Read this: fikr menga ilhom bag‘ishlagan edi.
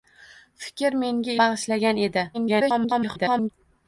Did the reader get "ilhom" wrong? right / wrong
wrong